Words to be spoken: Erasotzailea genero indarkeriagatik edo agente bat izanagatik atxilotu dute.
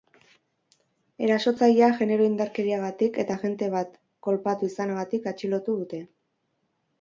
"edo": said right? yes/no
no